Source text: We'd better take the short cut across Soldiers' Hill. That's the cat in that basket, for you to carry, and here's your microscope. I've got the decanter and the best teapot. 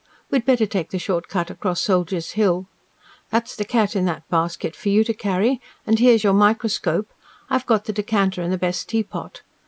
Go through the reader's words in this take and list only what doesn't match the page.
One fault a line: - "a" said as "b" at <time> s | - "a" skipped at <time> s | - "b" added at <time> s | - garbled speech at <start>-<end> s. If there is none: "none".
none